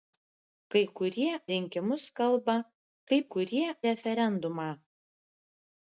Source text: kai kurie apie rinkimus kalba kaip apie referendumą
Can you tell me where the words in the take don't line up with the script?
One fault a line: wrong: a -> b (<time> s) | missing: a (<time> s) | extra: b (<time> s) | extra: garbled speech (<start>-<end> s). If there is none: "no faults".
missing: apie (1.3 s)
wrong: apie -> kurie (3.3 s)